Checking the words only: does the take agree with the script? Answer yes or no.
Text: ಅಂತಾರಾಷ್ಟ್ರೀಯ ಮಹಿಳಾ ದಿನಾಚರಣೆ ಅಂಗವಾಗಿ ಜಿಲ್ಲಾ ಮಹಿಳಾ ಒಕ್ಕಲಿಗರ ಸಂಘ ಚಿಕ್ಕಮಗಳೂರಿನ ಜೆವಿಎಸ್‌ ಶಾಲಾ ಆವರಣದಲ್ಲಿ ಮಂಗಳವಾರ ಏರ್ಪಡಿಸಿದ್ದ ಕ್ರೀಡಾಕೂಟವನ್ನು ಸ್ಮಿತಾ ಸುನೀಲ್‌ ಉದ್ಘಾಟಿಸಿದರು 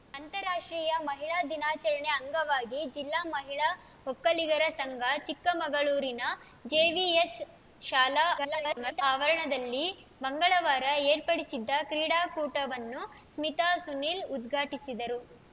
no